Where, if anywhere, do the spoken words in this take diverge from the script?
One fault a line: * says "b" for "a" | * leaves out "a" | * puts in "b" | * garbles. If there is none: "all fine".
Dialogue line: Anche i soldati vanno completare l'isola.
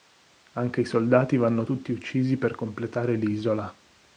* puts in "tutti uccisi per"